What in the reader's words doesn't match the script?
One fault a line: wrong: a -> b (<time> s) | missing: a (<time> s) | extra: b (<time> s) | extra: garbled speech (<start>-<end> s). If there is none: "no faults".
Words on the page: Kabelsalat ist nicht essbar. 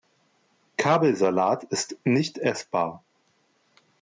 no faults